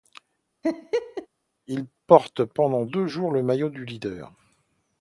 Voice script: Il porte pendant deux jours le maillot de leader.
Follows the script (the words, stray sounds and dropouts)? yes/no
no